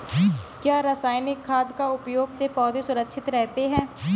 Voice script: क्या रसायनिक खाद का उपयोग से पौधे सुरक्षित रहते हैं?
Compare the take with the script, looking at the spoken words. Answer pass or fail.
pass